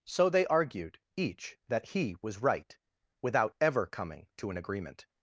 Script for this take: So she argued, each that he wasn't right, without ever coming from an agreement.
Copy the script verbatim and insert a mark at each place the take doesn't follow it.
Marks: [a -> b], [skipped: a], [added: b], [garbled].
So [she -> they] argued, each that he [wasn't -> was] right, without ever coming [from -> to] an agreement.